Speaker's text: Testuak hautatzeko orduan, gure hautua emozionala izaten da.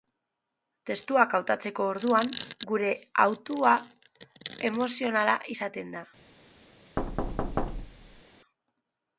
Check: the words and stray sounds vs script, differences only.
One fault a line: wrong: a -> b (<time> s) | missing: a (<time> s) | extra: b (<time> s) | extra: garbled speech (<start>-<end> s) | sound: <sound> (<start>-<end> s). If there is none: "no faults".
sound: thud (7.0-8.2 s)